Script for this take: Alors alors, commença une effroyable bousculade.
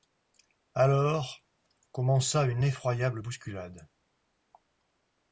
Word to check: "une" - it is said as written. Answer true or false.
true